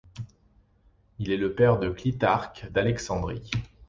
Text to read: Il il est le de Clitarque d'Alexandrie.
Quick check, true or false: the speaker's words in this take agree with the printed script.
false